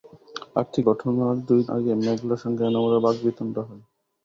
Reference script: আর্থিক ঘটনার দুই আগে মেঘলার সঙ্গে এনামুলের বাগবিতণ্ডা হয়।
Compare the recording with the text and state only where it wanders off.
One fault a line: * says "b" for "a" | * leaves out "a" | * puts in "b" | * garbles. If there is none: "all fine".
all fine